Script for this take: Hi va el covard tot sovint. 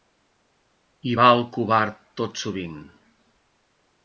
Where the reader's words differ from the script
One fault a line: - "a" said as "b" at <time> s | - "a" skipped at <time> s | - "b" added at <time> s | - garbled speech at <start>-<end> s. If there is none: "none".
none